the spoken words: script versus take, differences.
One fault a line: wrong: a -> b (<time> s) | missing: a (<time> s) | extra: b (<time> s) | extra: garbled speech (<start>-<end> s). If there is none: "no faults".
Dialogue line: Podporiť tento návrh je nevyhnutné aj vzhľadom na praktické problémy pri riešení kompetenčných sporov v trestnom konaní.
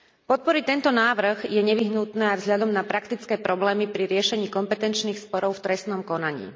no faults